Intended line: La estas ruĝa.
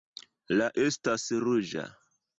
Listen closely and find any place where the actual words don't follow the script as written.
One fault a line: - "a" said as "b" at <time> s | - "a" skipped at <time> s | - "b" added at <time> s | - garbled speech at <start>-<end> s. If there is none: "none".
none